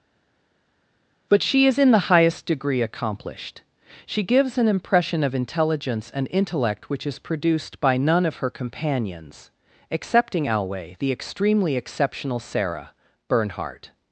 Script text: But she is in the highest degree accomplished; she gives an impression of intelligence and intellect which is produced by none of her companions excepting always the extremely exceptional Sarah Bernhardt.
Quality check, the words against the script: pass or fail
fail